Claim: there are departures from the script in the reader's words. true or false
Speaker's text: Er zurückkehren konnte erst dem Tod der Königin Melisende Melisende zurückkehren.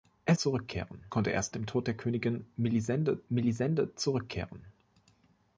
false